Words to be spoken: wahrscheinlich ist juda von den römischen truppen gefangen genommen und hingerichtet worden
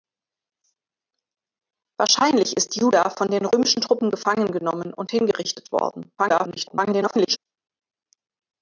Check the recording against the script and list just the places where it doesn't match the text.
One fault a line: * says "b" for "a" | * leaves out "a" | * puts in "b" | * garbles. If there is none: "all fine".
* garbles